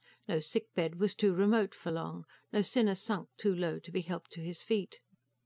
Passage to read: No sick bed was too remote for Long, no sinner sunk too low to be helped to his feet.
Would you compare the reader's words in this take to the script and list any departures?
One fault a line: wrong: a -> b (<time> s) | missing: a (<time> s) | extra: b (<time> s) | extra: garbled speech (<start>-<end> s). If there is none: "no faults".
no faults